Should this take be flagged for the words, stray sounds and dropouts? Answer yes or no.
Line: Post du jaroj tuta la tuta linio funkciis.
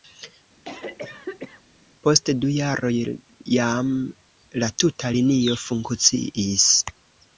yes